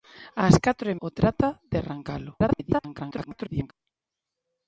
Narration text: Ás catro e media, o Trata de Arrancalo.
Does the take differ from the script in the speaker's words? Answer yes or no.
yes